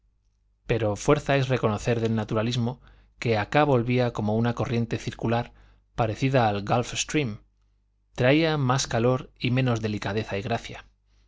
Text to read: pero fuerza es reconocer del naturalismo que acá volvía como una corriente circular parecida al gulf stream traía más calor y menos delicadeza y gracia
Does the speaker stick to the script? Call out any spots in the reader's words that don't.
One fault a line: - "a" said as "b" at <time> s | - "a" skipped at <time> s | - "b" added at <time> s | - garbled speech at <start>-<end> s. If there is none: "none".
none